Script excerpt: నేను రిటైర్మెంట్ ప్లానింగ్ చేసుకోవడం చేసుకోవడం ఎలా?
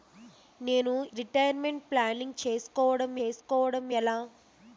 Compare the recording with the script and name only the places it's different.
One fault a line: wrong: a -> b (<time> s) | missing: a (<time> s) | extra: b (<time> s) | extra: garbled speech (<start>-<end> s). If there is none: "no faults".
no faults